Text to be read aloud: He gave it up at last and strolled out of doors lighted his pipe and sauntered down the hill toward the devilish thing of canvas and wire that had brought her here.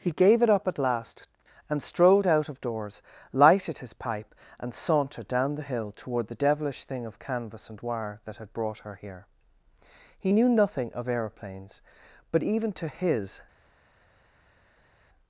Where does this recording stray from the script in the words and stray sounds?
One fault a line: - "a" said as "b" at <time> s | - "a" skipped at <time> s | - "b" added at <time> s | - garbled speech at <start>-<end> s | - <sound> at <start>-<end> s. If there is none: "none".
- "He knew nothing of aeroplanes but even to his" added at 10.2 s